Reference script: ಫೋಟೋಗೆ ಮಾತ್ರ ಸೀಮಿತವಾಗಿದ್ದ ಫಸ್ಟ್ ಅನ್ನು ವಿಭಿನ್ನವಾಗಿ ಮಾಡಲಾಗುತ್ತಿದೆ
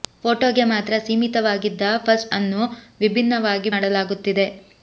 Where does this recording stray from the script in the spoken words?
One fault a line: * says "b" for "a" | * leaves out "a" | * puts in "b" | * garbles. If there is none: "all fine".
all fine